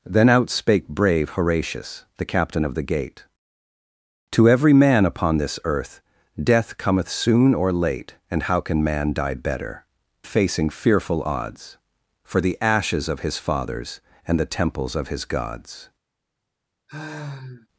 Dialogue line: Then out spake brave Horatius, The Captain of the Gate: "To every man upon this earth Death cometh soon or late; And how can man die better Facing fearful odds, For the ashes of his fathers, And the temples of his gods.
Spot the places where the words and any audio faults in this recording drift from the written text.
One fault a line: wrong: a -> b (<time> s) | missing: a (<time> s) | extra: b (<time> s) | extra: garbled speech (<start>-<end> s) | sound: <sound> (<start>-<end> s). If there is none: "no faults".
sound: sigh (16.9-17.7 s)